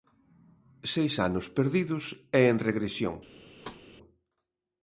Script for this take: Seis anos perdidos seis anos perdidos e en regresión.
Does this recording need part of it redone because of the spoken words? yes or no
yes